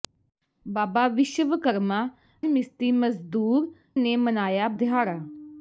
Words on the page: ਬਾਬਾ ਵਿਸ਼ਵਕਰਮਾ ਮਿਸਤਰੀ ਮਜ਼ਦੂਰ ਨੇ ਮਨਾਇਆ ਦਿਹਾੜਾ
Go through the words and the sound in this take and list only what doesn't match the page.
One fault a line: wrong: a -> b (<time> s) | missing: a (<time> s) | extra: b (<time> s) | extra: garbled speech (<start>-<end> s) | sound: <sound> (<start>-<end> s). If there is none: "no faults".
no faults